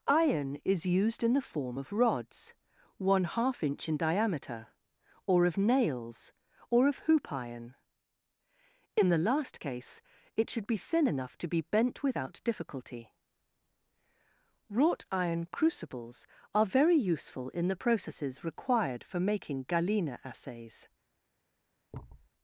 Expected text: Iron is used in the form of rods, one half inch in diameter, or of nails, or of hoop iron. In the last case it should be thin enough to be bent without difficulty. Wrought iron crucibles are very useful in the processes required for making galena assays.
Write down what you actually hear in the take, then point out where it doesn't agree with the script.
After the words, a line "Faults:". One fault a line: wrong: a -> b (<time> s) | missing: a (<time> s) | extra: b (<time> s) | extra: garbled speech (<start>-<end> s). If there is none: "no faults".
Iron is used in the form of rods, one half inch in diameter, or of nails, or of hoop iron. In the last case it should be thin enough to be bent without difficulty. Wrought iron crucibles are very useful in the processes required for making galena assays.
Faults:
no faults